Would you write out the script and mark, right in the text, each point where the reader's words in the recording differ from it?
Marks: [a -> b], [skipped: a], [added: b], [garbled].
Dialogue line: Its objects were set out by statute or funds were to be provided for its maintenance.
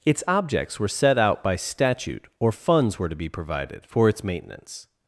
Its objects were set out by statute or funds were to be provided for its maintenance.